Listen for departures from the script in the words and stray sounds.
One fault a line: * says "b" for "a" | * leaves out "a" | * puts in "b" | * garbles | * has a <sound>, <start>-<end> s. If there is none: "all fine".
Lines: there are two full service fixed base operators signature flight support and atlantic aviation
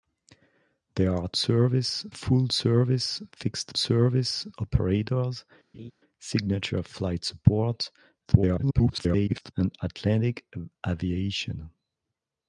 * says "service" for "two"
* says "service" for "base"
* has a laugh, 5.7-5.9 s
* garbles